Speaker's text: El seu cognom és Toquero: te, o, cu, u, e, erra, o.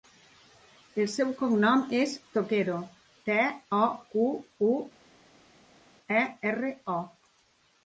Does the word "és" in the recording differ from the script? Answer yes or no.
no